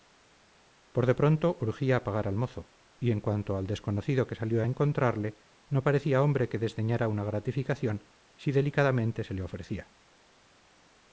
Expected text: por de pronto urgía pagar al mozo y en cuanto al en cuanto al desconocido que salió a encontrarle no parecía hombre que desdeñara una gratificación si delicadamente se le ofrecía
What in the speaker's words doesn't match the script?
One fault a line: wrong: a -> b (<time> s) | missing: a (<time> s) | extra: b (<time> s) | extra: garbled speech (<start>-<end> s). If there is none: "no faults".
missing: en cuanto al (3.7 s)